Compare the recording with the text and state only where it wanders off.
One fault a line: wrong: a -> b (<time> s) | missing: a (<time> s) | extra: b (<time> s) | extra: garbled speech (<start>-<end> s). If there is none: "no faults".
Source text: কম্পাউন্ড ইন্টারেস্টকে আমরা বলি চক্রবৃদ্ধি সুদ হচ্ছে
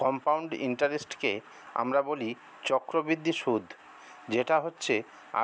extra: যেটা (4.3 s)